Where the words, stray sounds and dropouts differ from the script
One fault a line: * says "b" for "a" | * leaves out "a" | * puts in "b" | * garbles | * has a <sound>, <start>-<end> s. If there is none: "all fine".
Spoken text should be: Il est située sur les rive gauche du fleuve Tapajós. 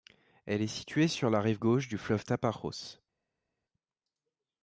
* says "Elle" for "Il"
* says "la" for "les"